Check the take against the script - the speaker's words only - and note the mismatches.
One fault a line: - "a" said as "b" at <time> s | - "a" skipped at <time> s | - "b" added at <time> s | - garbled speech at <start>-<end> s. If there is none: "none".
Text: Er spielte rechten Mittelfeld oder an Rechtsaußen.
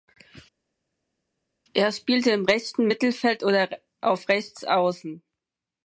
- "im" added at 2.3 s
- "an" said as "auf" at 4.0 s